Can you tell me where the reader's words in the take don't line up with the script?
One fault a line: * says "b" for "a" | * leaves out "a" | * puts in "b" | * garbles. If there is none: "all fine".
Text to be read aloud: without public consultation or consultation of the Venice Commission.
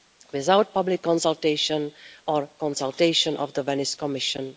all fine